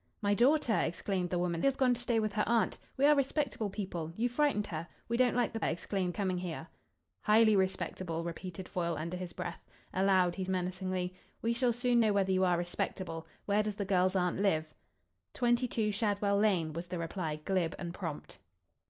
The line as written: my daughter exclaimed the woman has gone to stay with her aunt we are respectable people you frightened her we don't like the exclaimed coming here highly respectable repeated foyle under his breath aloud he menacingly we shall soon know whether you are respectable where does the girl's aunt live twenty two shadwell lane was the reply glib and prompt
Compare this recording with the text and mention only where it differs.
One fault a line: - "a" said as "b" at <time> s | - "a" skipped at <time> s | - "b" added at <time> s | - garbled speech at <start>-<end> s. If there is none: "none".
none